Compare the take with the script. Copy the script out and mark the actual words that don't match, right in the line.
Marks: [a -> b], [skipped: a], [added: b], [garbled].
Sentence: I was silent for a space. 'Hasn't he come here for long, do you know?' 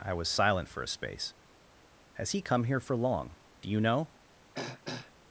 I was silent for a space. ['Hasn't -> Has] he come here for long, do you know?'